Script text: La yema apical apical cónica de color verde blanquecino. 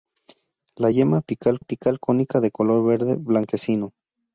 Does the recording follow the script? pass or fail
pass